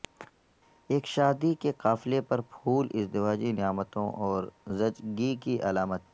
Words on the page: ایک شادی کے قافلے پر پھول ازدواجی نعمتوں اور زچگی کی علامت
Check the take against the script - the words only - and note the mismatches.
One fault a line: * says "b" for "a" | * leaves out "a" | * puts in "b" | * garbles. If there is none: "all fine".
all fine